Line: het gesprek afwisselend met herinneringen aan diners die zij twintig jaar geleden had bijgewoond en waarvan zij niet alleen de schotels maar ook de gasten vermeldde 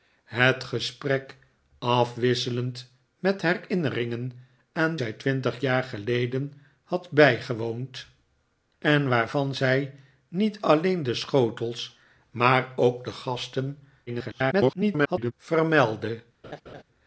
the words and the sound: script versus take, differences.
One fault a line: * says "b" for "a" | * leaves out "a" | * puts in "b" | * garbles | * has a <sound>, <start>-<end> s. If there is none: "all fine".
* leaves out "diners die"
* garbles
* has a laugh, 16.4-16.8 s